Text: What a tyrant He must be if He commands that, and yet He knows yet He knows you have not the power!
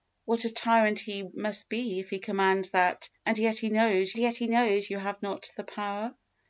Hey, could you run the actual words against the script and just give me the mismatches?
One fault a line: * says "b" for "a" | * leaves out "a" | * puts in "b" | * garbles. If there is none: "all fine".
all fine